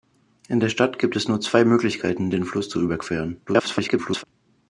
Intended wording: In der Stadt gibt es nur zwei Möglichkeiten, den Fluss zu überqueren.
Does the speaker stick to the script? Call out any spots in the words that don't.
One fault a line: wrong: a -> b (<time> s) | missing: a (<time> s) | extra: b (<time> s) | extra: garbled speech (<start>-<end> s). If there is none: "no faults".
extra: garbled speech (3.5-4.2 s)